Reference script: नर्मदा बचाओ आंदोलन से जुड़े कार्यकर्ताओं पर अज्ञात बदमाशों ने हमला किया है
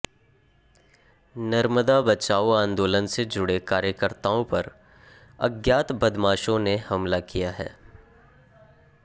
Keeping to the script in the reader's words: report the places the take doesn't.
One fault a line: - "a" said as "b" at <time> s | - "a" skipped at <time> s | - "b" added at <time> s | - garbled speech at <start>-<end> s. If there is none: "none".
none